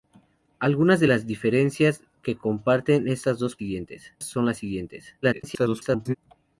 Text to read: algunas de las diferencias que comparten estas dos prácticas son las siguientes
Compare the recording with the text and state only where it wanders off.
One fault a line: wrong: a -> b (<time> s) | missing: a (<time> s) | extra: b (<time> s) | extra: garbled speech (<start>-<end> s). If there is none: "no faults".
wrong: prácticas -> siguientes (3.6 s)
extra: garbled speech (5.2-6.2 s)